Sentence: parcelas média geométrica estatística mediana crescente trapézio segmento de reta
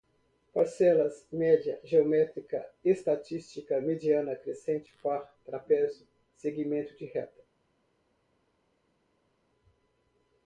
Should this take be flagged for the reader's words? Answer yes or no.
yes